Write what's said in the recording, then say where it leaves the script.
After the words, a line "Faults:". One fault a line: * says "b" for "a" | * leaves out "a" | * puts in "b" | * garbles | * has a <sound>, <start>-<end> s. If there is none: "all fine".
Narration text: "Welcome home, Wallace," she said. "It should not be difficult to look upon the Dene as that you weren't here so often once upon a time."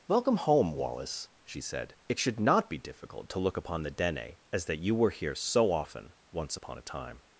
"Welcome home, Wallace," she said. "It should not be difficult to look upon the Dene as that you were here so often once upon a time."
Faults:
* says "were" for "weren't"